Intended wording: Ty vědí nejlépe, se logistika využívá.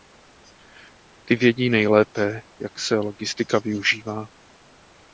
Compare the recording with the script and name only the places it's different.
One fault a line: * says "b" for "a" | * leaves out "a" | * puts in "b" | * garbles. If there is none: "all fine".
* puts in "jak"